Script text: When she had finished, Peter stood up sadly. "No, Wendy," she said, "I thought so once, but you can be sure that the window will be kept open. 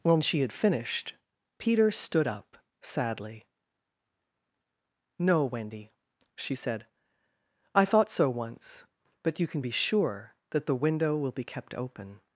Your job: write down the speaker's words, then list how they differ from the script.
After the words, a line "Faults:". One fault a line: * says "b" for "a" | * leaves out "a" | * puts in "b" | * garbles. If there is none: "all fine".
When she had finished, Peter stood up sadly. "No, Wendy," she said, "I thought so once, but you can be sure that the window will be kept open.
Faults:
all fine